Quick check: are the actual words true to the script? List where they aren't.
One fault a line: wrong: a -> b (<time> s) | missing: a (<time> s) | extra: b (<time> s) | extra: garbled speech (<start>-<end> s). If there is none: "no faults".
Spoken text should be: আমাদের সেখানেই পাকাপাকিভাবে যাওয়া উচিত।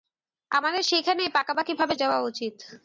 no faults